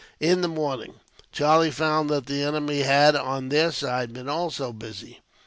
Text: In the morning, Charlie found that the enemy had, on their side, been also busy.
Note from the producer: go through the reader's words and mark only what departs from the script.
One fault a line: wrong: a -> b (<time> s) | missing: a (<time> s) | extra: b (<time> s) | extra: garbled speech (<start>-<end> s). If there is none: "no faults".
no faults